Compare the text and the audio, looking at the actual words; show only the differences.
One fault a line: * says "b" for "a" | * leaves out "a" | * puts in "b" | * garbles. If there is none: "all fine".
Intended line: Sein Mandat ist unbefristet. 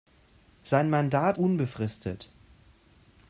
* leaves out "ist"